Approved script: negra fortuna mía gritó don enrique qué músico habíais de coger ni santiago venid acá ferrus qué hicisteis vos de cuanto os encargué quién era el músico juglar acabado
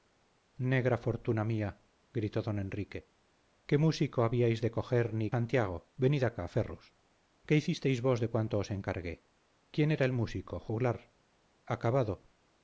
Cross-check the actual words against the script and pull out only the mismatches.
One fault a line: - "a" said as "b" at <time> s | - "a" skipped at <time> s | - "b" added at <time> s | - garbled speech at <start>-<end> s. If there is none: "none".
none